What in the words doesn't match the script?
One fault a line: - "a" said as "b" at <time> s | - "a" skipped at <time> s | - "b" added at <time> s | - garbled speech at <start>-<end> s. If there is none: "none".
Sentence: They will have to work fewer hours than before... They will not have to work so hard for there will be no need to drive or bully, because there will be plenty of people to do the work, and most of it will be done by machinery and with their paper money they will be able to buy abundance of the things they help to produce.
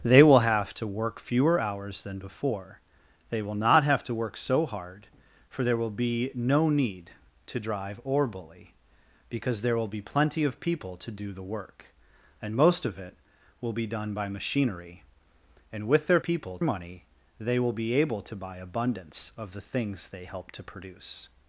- "paper" said as "people" at 16.2 s